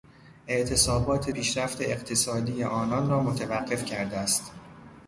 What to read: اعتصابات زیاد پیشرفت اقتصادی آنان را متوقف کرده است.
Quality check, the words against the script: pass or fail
fail